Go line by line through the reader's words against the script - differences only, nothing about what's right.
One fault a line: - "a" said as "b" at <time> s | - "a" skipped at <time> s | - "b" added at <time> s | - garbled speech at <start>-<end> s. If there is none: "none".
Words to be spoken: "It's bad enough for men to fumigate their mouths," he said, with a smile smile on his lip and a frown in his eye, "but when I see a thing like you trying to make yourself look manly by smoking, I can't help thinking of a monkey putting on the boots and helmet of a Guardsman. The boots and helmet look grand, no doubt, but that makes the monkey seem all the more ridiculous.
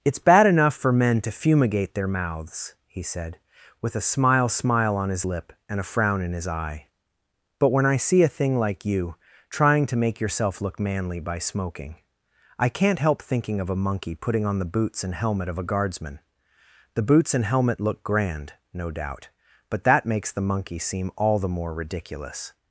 none